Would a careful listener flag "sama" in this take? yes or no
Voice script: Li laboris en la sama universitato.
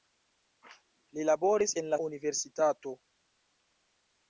yes